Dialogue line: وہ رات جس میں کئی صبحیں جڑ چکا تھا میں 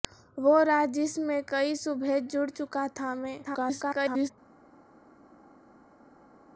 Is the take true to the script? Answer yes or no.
no